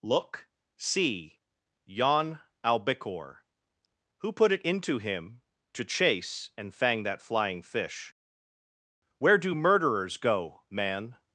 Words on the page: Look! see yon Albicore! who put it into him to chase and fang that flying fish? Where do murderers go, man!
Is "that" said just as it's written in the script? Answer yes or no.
yes